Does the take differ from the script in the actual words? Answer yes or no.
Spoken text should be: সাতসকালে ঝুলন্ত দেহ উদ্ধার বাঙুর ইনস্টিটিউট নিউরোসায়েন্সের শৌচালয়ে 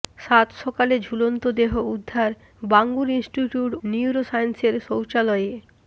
no